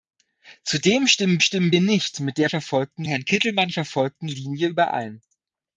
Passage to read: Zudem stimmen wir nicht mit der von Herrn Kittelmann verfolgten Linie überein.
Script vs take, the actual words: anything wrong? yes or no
yes